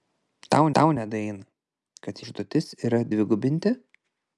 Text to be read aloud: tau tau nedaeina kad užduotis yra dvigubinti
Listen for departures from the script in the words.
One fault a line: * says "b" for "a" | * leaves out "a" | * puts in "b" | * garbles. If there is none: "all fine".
all fine